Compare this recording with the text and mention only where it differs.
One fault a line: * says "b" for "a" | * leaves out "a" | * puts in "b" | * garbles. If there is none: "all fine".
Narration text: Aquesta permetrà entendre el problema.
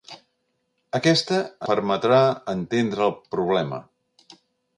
all fine